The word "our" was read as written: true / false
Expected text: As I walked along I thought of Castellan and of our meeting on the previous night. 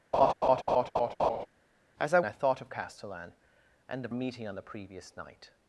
false